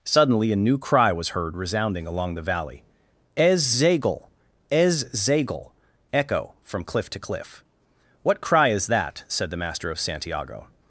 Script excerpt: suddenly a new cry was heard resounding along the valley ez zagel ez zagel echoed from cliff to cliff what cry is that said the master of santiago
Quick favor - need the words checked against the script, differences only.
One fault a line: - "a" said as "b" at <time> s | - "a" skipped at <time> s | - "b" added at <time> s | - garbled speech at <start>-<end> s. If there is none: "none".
- "echoed" said as "echo" at 6.1 s